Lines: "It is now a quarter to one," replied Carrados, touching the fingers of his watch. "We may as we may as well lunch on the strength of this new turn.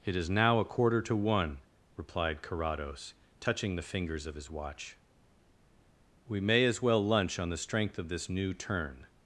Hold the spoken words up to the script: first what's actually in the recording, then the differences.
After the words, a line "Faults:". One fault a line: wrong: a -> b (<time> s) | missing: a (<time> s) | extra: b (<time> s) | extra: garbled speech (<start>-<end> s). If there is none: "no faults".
"It is now a quarter to one," replied Carrados, touching the fingers of his watch. "We may as well lunch on the strength of this new turn.
Faults:
missing: we may as (6.8 s)